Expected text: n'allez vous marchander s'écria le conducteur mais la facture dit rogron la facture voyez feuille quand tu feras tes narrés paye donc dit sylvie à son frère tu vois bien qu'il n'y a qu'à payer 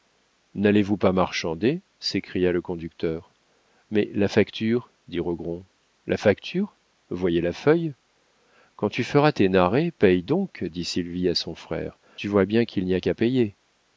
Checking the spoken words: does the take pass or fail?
fail